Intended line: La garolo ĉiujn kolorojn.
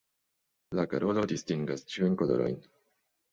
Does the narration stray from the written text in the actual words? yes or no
yes